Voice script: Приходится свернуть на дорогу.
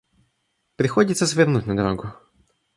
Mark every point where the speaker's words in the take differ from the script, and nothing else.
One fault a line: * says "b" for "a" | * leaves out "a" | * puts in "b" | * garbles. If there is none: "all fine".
all fine